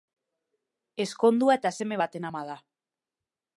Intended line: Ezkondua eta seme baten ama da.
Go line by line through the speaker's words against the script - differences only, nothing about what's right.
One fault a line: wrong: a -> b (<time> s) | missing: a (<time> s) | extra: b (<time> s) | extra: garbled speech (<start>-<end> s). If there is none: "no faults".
no faults